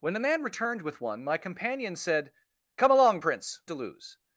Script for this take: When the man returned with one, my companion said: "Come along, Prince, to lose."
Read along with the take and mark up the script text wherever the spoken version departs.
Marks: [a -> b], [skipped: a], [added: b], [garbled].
When the man returned with one, my companion said: "Come along, Prince, to lose."